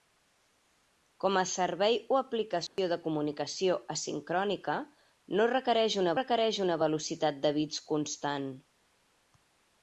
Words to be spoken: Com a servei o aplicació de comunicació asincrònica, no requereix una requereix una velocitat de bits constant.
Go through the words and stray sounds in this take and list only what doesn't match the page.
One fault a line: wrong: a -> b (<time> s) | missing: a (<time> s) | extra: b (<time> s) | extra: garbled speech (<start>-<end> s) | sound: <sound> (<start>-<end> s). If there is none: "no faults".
sound: dropout (2.7-2.8 s)